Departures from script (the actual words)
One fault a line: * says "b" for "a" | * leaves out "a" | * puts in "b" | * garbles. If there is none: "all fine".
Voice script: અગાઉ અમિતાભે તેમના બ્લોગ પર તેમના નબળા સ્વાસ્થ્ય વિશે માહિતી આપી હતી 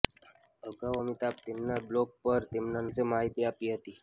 * leaves out "નબળા સ્વાસ્થ્ય"